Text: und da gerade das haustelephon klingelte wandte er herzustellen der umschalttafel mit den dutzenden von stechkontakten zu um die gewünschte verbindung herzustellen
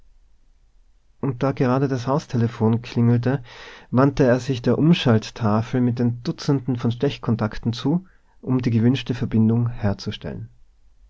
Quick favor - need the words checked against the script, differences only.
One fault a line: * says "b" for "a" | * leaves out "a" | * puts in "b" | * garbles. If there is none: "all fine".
* says "sich" for "herzustellen"